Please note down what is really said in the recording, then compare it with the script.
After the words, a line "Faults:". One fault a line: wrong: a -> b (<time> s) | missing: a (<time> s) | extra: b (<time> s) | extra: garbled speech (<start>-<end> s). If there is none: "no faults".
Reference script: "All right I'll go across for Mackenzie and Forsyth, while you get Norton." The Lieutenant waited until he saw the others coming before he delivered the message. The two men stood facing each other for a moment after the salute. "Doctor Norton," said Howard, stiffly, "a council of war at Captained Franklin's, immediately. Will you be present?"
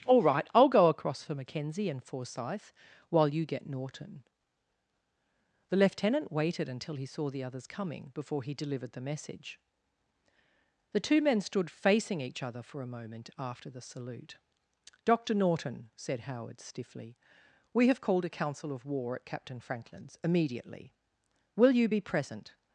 "All right I'll go across for Mackenzie and Forsyth, while you get Norton." The Lieutenant waited until he saw the others coming before he delivered the message. The two men stood facing each other for a moment after the salute. "Doctor Norton," said Howard, stiffly, "we have called a council of war at Captain Franklin's, immediately. Will you be present?"
Faults:
extra: we have called (17.7 s)
wrong: Captained -> Captain (19.3 s)